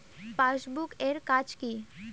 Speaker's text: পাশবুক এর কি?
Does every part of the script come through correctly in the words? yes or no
no